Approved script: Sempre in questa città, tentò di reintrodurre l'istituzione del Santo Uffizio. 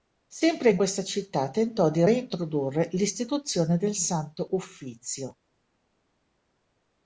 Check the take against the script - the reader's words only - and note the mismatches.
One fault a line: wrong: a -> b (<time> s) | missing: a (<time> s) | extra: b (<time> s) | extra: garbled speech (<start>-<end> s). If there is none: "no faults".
no faults